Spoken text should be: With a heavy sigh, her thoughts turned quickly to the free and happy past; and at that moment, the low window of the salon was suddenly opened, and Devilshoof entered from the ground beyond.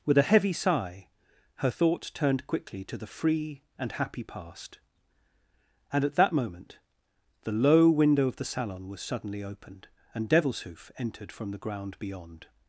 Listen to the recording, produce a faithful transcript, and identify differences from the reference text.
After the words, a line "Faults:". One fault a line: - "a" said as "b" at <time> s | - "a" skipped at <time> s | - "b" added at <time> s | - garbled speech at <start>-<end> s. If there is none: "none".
With a heavy sigh, her thoughts turned quickly to the free and happy past; and at that moment, the low window of the salon was suddenly opened, and Devilshoof entered from the ground beyond.
Faults:
none